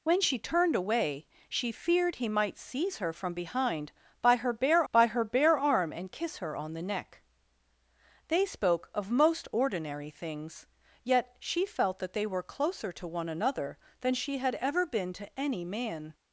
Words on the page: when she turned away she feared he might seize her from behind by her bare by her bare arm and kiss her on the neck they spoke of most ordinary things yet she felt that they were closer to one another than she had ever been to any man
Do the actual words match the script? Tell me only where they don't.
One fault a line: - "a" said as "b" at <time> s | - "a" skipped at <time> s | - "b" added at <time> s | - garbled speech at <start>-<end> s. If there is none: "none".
none